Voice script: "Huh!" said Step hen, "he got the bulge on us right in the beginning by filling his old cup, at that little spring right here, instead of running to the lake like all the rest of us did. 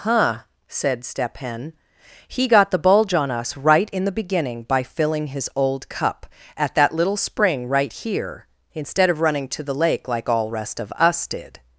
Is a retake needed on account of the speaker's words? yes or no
yes